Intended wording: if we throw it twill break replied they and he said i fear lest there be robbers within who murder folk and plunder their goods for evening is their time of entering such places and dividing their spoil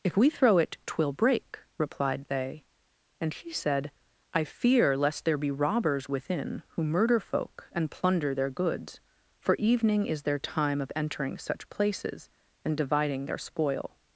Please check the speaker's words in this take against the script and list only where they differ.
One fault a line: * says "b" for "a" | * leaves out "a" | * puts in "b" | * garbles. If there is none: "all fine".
all fine